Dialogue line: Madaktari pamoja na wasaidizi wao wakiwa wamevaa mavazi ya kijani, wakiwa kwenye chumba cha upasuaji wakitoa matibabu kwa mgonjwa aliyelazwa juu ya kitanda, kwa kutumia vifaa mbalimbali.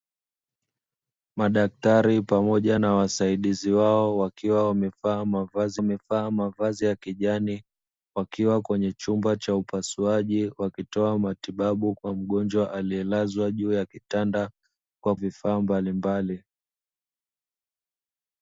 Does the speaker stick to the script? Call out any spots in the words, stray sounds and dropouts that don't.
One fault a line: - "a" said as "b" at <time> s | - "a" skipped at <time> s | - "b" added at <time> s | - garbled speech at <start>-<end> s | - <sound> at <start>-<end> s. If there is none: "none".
- "wamevaa mavazi" added at 5.8 s
- "kutumia" skipped at 15.2 s